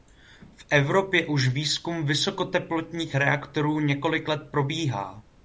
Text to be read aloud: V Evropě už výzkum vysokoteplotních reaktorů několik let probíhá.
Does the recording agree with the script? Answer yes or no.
yes